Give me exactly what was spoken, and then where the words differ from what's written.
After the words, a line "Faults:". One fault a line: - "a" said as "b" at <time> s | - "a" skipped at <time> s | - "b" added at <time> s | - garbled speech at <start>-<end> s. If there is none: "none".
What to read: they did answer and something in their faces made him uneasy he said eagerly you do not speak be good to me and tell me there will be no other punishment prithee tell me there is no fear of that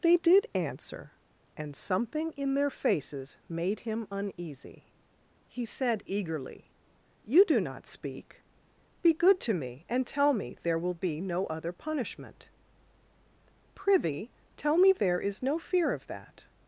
they did answer and something in their faces made him uneasy he said eagerly you do not speak be good to me and tell me there will be no other punishment prithee tell me there is no fear of that
Faults:
none